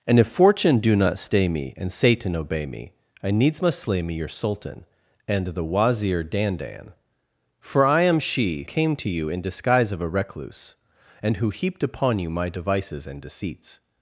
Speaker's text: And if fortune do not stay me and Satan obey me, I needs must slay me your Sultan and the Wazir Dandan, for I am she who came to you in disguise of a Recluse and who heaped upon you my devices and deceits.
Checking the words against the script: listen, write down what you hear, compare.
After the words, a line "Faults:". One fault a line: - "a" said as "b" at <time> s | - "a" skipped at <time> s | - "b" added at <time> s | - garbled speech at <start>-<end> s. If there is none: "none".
And if fortune do not stay me and Satan obey me, I needs must slay me your Sultan and the Wazir Dandan, for I am she came to you in disguise of a Recluse and who heaped upon you my devices and deceits.
Faults:
- "who" skipped at 8.6 s